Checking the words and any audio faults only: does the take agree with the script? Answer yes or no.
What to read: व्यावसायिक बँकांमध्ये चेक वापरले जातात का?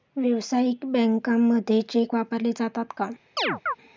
no